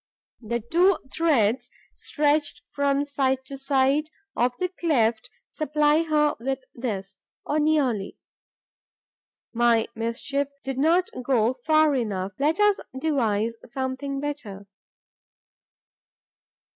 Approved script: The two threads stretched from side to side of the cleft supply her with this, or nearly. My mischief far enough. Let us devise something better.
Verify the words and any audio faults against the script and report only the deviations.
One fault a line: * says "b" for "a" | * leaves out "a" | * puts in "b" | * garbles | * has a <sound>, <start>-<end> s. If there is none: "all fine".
* puts in "did not go"